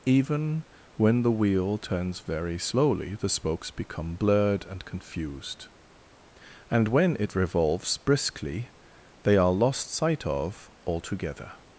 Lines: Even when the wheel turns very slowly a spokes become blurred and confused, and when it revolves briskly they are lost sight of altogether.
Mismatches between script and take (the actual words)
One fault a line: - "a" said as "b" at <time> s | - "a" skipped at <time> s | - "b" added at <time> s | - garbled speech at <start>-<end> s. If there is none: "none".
- "a" said as "the" at 3.1 s